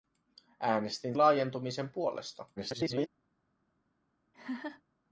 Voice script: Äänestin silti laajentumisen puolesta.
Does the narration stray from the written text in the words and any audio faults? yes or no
yes